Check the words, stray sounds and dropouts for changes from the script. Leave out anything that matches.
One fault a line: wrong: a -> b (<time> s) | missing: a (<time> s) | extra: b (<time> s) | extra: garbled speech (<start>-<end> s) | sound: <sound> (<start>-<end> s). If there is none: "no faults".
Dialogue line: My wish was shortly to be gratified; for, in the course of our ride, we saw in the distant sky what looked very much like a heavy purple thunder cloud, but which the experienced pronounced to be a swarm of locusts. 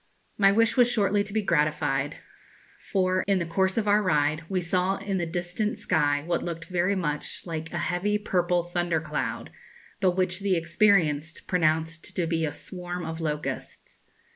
no faults